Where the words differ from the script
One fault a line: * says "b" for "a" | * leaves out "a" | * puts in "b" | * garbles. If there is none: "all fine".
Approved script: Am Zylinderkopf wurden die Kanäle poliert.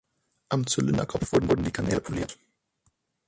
* puts in "wurden"